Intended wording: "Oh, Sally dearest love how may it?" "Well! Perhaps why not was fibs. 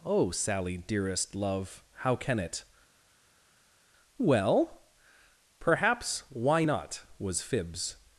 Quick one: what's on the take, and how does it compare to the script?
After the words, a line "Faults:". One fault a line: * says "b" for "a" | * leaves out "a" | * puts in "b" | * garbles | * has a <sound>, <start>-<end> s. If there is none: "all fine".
"Oh, Sally dearest love how can it?" "Well! Perhaps why not was fibs.
Faults:
* says "can" for "may"